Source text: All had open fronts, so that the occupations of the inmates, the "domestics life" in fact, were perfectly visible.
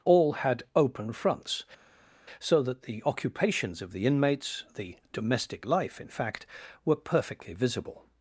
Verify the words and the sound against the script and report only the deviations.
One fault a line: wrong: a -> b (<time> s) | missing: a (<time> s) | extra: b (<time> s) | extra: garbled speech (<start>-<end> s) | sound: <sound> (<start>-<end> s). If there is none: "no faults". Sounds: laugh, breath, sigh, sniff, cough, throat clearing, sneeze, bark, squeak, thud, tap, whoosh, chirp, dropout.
wrong: domestics -> domestic (5.1 s)